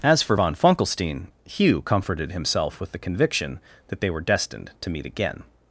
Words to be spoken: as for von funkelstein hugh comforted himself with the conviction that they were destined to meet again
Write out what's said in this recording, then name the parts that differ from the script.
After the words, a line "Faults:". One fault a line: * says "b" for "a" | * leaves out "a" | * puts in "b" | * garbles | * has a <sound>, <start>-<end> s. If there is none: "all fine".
as for von funkelstein hugh comforted himself with the conviction that they were destined to meet again
Faults:
all fine